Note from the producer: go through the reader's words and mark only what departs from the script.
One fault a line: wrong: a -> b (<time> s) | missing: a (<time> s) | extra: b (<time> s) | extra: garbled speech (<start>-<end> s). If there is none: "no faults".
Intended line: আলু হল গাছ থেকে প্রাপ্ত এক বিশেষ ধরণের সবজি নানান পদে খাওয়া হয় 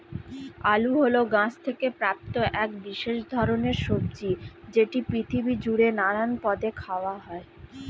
extra: যেটি পৃথিবী জুড়ে (4.7 s)